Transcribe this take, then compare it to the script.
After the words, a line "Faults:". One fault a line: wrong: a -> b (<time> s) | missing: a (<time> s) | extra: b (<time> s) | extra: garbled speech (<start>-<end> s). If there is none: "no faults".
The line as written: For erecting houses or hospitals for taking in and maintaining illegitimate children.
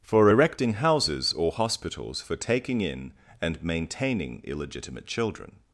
For erecting houses or hospitals for taking in and maintaining illegitimate children.
Faults:
no faults